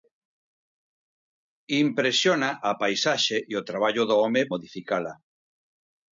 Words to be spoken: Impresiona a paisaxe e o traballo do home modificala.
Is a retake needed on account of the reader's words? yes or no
no